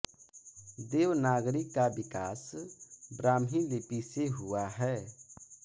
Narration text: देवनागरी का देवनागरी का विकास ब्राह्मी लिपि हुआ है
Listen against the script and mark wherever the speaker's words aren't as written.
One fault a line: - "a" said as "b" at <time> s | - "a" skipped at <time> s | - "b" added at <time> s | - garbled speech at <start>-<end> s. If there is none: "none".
- "देवनागरी का" skipped at 1.9 s
- "से" added at 4.0 s